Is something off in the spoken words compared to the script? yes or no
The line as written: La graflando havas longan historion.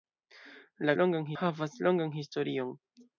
yes